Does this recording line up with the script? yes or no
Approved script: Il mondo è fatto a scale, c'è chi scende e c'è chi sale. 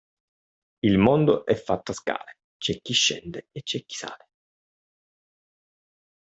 yes